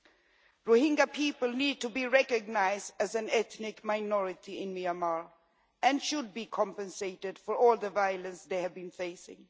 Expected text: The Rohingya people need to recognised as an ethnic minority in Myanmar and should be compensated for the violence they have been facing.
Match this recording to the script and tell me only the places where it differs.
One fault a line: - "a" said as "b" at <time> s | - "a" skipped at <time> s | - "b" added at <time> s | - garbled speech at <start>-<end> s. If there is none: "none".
- "be" added at 1.9 s
- "all" added at 7.5 s